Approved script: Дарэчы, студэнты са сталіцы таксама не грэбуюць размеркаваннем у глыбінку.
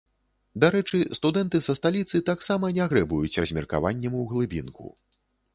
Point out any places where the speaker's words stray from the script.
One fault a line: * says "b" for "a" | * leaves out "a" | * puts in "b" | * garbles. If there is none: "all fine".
all fine